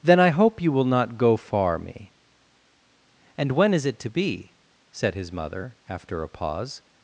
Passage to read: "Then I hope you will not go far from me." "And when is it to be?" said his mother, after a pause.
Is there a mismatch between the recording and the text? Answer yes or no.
yes